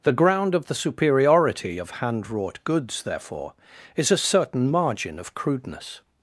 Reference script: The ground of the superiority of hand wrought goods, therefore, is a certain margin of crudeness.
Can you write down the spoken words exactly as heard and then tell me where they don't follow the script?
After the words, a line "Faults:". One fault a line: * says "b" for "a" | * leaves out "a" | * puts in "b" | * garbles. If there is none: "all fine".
The ground of the superiority of hand wrought goods, therefore, is a certain margin of crudeness.
Faults:
all fine